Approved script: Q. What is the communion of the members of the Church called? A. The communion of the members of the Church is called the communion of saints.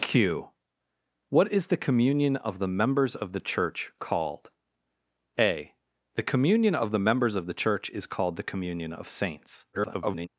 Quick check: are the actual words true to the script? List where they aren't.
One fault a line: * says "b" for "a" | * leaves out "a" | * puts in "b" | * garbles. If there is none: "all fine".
* garbles